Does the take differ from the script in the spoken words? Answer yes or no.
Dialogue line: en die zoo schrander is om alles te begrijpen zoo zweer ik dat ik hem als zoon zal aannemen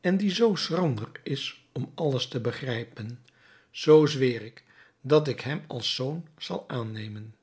no